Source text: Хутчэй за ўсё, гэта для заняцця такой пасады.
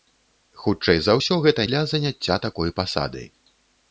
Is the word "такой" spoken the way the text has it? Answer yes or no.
yes